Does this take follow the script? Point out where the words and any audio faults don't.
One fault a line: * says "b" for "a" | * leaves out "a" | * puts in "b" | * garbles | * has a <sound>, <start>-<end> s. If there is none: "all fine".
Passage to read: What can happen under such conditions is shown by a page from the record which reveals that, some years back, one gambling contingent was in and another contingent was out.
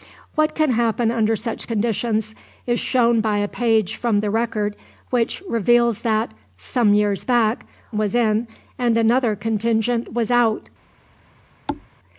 * leaves out "one gambling contingent"
* has a thud, 11.7-11.9 s